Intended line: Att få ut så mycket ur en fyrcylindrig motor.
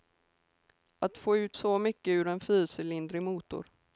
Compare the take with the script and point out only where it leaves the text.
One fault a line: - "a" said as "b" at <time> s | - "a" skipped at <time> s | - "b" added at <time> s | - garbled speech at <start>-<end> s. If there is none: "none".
none